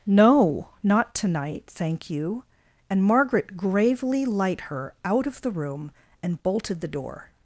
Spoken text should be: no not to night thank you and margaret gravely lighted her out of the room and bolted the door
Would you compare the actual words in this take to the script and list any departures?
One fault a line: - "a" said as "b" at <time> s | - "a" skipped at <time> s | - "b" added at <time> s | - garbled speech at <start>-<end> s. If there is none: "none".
- "lighted" said as "light" at 4.2 s